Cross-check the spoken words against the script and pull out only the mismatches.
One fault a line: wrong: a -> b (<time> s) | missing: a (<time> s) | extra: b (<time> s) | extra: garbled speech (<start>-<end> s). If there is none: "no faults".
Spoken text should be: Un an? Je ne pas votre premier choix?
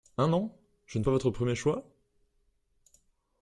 no faults